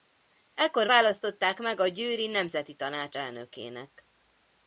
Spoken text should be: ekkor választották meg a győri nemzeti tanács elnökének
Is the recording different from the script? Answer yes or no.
no